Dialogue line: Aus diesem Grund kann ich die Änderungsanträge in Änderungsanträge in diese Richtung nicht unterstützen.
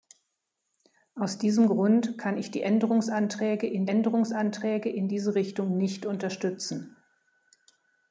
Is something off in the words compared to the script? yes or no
no